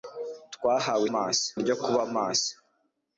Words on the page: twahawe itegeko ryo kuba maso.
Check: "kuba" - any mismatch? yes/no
no